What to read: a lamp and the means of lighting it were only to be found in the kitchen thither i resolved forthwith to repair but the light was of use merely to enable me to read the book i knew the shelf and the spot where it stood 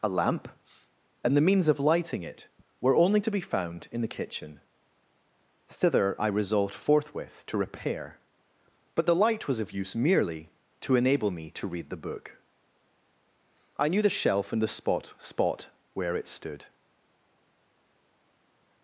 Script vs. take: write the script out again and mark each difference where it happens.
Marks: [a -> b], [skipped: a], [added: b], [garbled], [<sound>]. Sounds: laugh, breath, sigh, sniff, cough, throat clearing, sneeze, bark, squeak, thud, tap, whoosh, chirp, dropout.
a lamp and the means of lighting it were only to be found in the kitchen thither i resolved forthwith to repair but the light was of use merely to enable me to read the book i knew the shelf and the spot [added: spot] where it stood